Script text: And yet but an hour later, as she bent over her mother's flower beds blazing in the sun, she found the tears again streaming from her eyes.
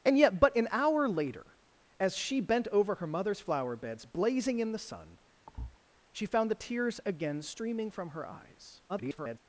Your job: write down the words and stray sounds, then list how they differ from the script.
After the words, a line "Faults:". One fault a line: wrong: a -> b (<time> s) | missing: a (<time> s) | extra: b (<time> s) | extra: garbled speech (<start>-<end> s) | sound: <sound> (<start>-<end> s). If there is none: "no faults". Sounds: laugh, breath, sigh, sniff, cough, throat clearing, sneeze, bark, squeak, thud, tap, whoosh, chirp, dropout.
And yet but an hour later, as she bent over her mother's flower beds blazing in the sun, she found the tears again streaming from her eyes. [garbled]
Faults:
sound: thud (5.5-5.8 s)
extra: garbled speech (8.9-9.4 s)